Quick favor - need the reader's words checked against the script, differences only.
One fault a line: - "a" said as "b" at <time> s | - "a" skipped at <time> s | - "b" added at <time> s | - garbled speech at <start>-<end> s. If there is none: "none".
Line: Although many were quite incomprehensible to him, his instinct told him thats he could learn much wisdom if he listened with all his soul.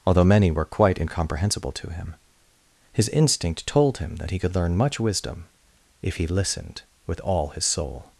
- "thats" said as "that" at 4.2 s